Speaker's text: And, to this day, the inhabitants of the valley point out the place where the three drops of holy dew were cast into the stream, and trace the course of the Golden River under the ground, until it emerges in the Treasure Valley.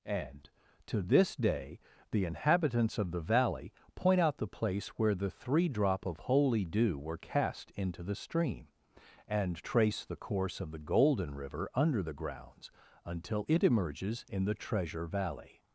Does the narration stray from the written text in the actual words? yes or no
yes